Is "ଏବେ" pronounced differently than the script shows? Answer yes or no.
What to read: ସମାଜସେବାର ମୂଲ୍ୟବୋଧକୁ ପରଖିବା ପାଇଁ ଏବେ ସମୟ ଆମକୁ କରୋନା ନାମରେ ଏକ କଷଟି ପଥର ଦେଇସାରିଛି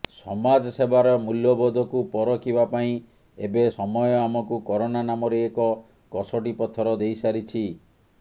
no